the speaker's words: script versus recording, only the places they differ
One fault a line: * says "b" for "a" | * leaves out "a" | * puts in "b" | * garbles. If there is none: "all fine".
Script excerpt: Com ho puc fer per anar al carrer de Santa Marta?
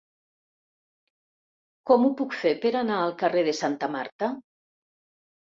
all fine